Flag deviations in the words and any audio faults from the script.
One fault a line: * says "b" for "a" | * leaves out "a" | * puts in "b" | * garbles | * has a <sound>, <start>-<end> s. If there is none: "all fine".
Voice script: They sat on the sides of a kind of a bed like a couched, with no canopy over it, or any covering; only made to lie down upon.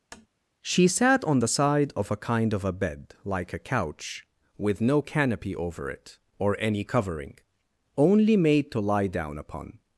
* has a tap, 0.1-0.3 s
* says "She" for "They"
* says "side" for "sides"
* says "couch" for "couched"